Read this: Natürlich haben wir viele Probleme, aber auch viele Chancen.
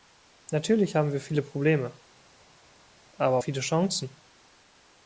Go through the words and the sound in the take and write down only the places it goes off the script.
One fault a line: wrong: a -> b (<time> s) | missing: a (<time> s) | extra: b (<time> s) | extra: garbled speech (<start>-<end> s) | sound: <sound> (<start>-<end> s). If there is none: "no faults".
missing: auch (3.4 s)